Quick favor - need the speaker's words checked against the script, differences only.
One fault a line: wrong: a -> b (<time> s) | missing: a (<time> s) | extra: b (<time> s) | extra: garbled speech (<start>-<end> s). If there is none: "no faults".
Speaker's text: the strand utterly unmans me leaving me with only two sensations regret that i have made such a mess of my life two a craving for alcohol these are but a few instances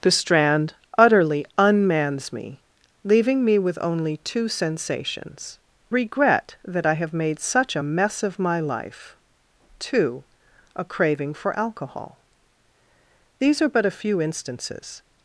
no faults